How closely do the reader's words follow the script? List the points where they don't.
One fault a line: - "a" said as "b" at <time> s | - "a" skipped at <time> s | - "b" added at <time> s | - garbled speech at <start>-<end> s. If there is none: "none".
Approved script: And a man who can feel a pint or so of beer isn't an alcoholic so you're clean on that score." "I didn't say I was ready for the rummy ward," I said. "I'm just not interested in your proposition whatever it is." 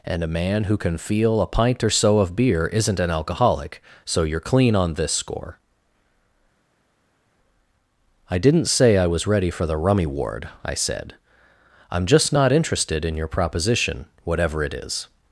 - "that" said as "this" at 5.0 s